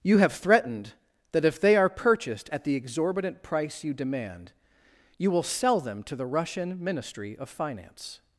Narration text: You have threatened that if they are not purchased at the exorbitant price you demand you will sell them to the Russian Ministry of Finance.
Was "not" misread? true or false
true